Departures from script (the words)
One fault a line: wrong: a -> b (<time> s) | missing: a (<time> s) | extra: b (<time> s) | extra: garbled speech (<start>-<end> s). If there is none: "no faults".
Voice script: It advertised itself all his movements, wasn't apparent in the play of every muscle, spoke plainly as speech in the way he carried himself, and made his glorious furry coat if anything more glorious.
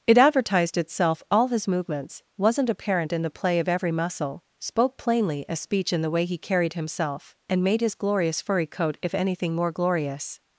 no faults